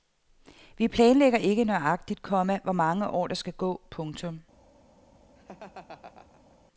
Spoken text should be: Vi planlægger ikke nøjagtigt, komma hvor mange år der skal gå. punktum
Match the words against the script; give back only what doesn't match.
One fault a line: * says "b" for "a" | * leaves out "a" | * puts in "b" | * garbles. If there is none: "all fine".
all fine